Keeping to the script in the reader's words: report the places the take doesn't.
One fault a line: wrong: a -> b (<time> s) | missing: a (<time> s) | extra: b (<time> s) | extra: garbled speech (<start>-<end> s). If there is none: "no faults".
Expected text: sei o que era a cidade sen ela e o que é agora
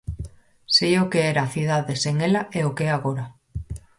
no faults